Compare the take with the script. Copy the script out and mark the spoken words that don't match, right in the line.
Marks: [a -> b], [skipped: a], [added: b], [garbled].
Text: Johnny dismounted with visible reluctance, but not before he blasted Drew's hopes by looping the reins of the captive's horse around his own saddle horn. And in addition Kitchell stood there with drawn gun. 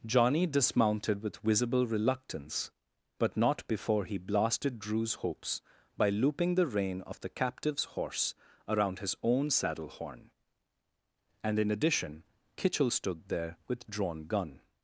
Johnny dismounted with visible reluctance, but not before he blasted Drew's hopes by looping the [reins -> rein] of the captive's horse around his own saddle horn. And in addition Kitchell stood there with drawn gun.